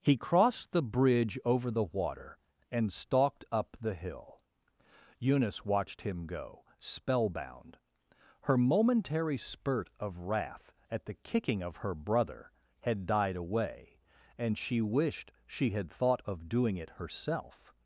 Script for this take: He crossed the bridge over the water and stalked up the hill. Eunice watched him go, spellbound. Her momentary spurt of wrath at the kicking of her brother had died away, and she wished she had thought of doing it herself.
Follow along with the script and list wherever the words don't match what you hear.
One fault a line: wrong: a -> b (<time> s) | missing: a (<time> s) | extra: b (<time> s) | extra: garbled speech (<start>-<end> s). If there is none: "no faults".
no faults